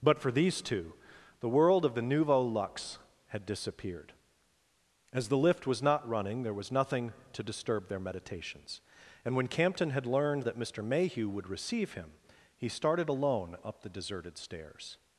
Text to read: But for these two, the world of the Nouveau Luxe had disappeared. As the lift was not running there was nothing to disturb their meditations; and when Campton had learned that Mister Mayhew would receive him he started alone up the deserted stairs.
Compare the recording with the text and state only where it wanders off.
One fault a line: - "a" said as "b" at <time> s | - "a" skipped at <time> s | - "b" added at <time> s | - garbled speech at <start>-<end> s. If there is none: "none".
none